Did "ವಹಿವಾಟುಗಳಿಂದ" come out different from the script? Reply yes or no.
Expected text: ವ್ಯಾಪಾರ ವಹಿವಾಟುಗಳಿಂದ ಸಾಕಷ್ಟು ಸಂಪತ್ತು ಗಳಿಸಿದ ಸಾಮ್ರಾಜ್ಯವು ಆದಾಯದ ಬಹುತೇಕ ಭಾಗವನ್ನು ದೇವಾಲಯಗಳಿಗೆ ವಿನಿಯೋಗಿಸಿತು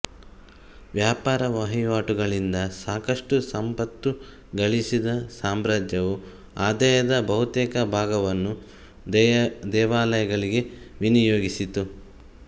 no